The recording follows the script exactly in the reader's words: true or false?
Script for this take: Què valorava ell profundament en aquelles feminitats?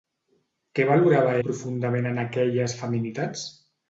false